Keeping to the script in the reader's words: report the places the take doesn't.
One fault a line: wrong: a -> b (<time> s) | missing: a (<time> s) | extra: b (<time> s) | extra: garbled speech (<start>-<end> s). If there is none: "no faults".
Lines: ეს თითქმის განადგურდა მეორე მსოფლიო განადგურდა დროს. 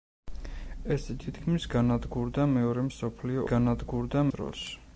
no faults